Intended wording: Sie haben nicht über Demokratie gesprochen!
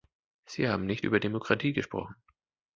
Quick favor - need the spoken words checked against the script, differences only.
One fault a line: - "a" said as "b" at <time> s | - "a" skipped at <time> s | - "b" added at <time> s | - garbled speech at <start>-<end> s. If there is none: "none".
none